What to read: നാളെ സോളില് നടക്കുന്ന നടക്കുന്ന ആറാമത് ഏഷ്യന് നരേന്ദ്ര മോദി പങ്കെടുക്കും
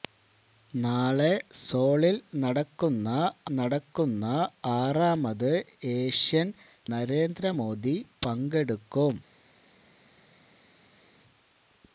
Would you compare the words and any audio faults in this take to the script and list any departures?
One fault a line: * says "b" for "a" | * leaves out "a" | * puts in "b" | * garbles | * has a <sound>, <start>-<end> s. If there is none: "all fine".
all fine